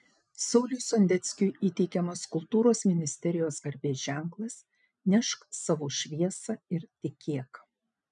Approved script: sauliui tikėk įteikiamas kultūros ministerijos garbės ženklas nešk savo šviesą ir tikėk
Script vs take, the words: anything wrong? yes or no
yes